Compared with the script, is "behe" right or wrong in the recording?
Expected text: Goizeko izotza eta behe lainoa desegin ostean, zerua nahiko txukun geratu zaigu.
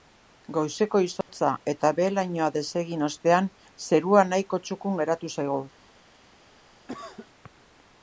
right